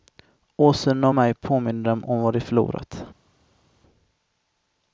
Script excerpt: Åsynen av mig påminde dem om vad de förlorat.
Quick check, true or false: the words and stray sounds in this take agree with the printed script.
true